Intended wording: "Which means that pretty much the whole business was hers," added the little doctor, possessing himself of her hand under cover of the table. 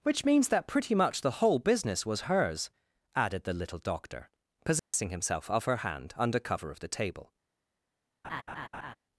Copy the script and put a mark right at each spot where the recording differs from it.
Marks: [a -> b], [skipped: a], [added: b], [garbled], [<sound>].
"Which means that pretty much the whole business was hers," added the little doctor, possessing [dropout] himself of her hand under cover of the table. [laugh]